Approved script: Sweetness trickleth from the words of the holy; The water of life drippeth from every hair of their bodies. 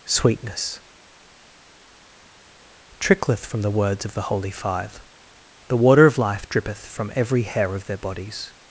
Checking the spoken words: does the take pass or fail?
fail